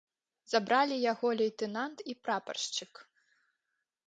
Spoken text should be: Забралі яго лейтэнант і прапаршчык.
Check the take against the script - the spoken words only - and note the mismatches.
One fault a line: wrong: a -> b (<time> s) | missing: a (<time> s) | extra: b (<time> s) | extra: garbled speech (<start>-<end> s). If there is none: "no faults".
no faults